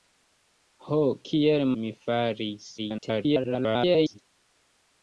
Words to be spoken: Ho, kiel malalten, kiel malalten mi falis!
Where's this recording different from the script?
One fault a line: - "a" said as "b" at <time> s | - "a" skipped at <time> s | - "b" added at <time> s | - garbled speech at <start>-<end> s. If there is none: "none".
- "malalten kiel malalten" skipped at 1.6 s
- garbled speech at 2.8-4.2 s